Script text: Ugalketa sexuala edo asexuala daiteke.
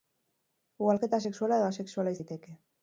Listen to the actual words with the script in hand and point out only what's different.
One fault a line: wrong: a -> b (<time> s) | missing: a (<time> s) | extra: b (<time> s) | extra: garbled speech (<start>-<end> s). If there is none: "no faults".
no faults